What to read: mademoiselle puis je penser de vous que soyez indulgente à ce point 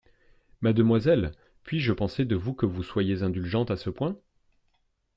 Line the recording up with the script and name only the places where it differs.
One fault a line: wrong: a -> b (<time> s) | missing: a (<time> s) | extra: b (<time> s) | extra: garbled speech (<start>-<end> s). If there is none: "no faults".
extra: vous (2.6 s)